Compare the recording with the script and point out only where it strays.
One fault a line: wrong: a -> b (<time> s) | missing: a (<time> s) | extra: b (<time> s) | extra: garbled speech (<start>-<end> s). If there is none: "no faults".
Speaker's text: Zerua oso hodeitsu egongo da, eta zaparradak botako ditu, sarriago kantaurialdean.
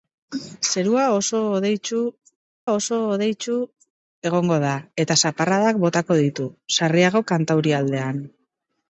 extra: oso hodeitsu (2.8 s)